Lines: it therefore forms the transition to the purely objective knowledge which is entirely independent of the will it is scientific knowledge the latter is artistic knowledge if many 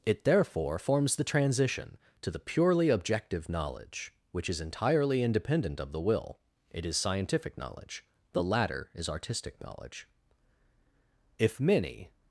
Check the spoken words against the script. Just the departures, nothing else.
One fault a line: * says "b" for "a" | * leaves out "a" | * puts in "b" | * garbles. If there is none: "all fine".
all fine